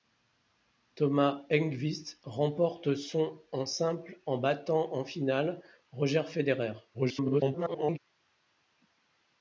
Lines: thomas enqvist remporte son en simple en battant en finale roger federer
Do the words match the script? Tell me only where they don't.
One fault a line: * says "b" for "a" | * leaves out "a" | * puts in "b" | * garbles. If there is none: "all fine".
* garbles